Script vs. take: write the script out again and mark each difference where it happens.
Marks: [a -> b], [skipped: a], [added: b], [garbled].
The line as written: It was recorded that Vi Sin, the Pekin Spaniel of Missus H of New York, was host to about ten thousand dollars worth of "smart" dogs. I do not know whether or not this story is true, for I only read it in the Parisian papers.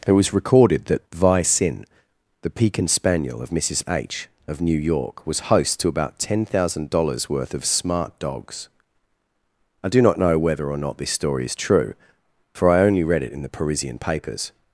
It was recorded that Vi Sin, the Pekin Spaniel of Missus H of New York, was host to about ten thousand dollars worth of "smart" dogs. I do not know whether or not this story is true, for I only read it in the Parisian papers.